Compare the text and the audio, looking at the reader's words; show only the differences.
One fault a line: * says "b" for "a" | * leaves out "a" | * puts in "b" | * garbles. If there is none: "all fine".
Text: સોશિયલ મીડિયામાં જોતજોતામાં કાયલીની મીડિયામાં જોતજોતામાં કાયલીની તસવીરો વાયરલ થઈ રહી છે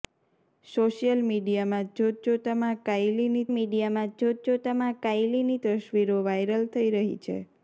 all fine